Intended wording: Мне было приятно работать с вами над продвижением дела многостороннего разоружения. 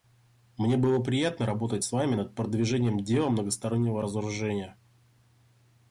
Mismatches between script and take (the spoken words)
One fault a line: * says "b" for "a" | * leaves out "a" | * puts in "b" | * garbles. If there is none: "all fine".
all fine